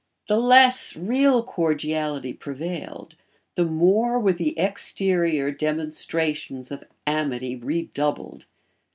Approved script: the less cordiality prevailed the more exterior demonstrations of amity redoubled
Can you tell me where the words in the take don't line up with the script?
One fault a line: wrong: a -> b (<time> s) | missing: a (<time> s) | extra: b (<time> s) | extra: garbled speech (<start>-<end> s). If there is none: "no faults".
extra: real (0.9 s)
extra: were the (4.2 s)